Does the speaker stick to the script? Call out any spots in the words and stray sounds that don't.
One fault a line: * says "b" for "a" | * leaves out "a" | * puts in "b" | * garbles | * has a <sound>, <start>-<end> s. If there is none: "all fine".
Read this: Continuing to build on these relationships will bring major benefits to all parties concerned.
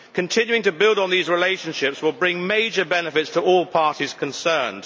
all fine